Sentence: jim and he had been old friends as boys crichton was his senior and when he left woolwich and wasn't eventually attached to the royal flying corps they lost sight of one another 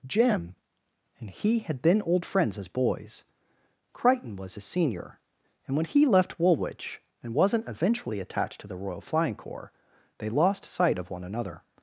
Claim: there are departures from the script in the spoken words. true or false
false